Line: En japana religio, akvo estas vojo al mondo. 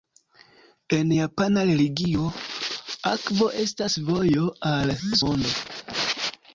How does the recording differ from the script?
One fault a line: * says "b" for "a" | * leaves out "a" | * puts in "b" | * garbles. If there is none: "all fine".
all fine